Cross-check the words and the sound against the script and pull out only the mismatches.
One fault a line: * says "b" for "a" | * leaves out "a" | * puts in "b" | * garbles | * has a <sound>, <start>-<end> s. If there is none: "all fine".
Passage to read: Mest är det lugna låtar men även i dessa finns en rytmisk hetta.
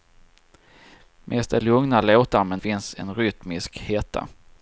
* leaves out "det"
* leaves out "även i dessa"